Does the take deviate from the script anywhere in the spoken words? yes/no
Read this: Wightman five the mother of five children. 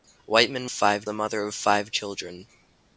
no